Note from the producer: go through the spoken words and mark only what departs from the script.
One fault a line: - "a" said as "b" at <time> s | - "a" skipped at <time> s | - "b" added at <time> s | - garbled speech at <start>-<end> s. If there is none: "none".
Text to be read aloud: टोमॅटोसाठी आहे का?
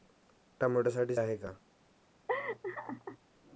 none